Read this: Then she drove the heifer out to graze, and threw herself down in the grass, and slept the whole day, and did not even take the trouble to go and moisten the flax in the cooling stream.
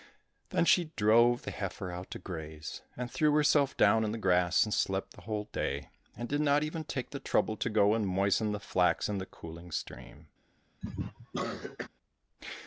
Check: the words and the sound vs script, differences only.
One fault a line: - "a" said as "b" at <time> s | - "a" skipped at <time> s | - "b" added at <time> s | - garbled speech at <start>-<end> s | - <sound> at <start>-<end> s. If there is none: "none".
- cough at 10.8-11.9 s